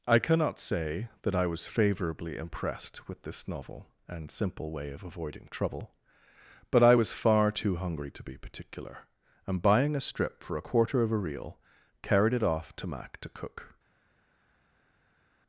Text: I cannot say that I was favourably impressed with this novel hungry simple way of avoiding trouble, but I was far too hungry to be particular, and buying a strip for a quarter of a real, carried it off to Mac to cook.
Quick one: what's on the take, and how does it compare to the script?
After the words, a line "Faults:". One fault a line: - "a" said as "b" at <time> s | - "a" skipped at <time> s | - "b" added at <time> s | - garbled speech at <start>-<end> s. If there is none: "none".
I cannot say that I was favourably impressed with this novel and simple way of avoiding trouble, but I was far too hungry to be particular, and buying a strip for a quarter of a real, carried it off to Mac to cook.
Faults:
- "hungry" said as "and" at 4.1 s